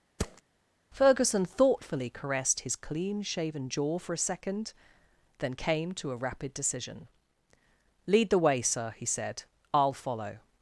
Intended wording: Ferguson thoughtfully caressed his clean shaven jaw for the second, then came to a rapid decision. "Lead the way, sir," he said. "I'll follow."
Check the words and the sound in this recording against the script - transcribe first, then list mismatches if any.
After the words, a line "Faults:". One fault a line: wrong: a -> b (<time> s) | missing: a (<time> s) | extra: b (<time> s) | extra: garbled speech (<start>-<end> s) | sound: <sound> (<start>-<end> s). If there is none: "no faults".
Ferguson thoughtfully caressed his clean shaven jaw for a second, then came to a rapid decision. "Lead the way, sir," he said. "I'll follow."
Faults:
sound: thud (0.2-0.4 s)
wrong: the -> a (4.1 s)